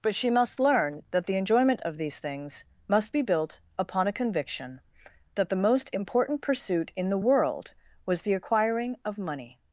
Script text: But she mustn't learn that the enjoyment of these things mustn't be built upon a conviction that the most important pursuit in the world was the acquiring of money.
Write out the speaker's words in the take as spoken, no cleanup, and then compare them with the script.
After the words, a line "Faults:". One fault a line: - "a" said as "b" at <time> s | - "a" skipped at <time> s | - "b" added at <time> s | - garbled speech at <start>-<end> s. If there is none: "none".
But she must learn that the enjoyment of these things must be built upon a conviction that the most important pursuit in the world was the acquiring of money.
Faults:
- "mustn't" said as "must" at 0.3 s
- "mustn't" said as "must" at 2.9 s